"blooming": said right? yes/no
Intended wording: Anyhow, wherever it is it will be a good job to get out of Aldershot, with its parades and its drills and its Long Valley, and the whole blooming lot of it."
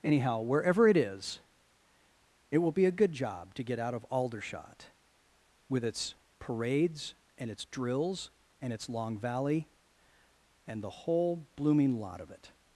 yes